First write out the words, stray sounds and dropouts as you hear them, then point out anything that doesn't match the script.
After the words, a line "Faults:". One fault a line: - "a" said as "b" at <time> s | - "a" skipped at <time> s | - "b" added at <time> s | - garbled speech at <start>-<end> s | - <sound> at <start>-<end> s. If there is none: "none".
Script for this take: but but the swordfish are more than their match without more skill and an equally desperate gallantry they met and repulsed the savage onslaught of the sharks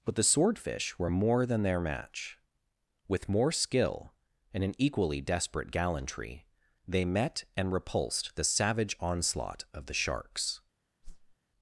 but the swordfish were more than their match with more skill and an equally desperate gallantry they met and repulsed the savage onslaught of the sharks
Faults:
- "but" skipped at 0.1 s
- "are" said as "were" at 1.0 s
- "without" said as "with" at 3.1 s
- whoosh at 11.0-11.4 s